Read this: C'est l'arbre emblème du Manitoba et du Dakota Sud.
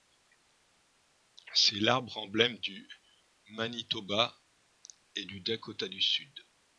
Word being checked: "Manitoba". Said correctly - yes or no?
yes